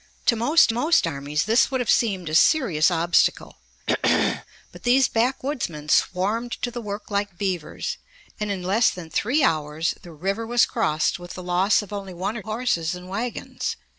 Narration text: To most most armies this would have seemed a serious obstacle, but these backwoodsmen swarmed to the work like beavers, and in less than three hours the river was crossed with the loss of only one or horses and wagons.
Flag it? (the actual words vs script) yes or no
no